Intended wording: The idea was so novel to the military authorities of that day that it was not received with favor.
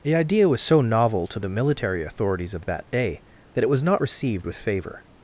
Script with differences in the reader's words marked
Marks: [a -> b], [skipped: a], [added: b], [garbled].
The idea was so novel to the military authorities of that day that it was not received with favor.